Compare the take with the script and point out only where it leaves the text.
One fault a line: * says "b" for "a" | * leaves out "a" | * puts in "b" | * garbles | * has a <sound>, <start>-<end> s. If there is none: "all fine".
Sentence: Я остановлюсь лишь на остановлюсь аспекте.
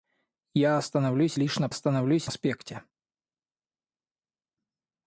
all fine